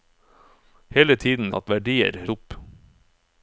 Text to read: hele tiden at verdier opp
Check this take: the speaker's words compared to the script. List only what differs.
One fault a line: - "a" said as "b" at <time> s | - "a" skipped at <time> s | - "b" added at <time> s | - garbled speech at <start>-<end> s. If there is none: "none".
none